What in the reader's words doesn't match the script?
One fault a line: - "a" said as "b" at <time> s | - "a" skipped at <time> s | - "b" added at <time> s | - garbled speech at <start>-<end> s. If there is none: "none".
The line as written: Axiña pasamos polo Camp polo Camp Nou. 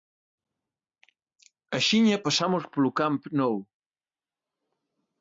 - "polo Camp" skipped at 3.2 s